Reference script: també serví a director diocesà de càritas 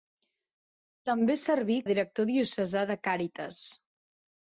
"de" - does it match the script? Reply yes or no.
yes